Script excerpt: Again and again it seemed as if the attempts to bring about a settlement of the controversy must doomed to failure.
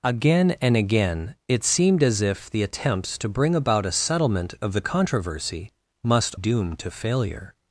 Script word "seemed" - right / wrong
right